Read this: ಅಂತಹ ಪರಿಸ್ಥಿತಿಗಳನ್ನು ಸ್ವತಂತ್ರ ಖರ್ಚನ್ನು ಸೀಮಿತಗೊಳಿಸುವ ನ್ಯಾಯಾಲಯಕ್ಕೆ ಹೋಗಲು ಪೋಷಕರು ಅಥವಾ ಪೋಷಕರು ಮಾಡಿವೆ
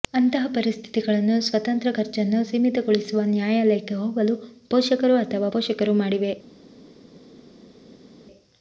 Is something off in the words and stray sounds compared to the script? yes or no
no